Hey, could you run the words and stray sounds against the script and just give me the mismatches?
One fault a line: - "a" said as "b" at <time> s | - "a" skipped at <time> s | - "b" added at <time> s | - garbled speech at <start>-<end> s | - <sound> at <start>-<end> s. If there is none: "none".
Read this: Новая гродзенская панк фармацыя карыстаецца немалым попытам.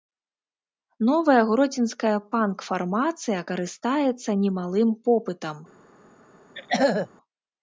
- throat clearing at 6.6-7.1 s